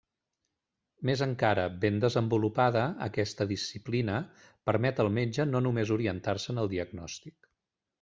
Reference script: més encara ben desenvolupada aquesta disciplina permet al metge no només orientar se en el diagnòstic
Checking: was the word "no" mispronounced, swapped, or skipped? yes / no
no